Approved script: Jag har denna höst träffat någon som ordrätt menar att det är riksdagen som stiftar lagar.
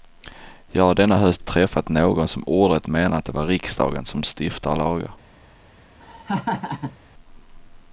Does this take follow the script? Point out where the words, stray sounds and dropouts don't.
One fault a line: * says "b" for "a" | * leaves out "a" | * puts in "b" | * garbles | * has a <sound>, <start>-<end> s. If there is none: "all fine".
* has a laugh, 6.0-7.0 s